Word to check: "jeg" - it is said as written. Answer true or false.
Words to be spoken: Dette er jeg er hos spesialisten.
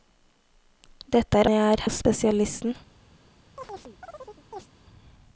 true